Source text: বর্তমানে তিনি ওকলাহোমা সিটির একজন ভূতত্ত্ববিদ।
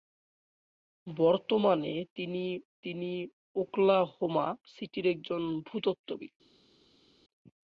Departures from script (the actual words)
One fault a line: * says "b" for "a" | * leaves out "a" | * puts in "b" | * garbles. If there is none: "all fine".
* puts in "তিনি"